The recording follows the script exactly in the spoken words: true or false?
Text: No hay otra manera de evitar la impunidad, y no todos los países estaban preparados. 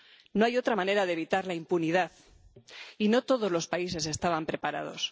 true